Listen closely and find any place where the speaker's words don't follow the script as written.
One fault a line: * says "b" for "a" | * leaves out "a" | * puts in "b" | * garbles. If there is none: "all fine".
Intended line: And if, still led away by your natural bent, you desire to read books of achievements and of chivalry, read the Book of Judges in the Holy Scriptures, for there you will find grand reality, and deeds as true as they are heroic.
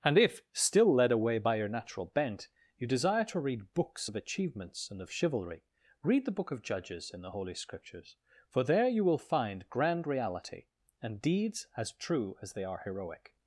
all fine